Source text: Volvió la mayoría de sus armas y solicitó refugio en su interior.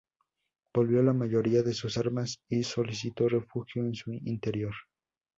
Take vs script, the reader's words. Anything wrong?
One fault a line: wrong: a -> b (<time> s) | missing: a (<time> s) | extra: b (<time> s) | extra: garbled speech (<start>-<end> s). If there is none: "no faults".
no faults